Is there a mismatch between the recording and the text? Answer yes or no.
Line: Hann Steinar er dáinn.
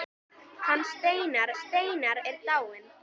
yes